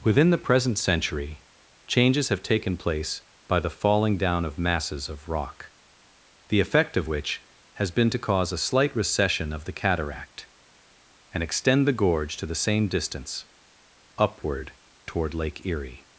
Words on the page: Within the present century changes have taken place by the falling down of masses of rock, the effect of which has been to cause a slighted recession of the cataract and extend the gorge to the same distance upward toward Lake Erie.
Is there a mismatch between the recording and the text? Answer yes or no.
yes